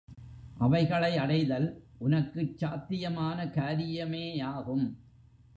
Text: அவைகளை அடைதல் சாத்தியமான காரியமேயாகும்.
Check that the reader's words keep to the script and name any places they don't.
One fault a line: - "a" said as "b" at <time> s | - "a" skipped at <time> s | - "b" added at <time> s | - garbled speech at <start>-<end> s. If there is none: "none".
- "உனக்குச்" added at 2.0 s